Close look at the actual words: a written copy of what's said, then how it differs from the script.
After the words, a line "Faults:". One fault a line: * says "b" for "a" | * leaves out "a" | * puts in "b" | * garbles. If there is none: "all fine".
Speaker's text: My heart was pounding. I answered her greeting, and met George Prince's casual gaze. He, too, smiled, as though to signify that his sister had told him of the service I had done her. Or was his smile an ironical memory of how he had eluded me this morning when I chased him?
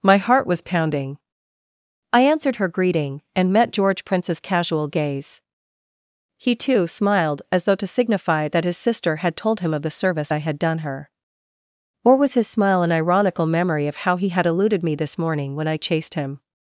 My heart was pounding. I answered her greeting, and met George Prince's casual gaze. He, too, smiled, as though to signify that his sister had told him of the service I had done her. Or was his smile an ironical memory of how he had eluded me this morning when I chased him?
Faults:
all fine